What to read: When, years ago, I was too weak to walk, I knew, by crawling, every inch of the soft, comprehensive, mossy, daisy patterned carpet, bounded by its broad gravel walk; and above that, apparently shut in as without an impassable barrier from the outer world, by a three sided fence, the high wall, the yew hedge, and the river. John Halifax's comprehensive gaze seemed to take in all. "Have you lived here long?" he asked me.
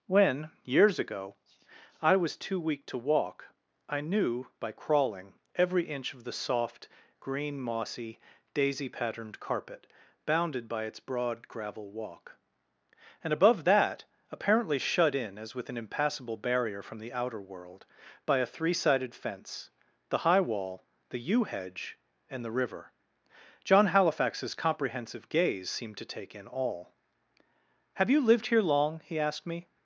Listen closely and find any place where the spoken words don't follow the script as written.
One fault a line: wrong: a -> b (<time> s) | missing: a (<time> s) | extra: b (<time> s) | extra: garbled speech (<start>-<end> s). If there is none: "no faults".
wrong: comprehensive -> green (7.2 s)
wrong: without -> with (15.5 s)